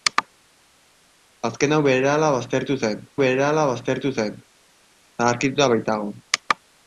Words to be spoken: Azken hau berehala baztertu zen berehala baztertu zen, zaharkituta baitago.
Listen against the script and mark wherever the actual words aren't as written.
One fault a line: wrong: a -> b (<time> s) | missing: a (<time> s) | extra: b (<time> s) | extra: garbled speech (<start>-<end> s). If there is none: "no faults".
no faults